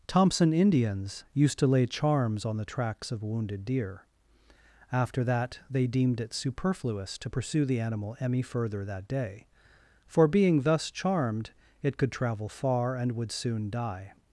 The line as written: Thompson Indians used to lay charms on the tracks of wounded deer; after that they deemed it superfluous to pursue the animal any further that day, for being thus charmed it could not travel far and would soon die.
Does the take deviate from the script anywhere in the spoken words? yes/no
yes